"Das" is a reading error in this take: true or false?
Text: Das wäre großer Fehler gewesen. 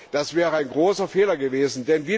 false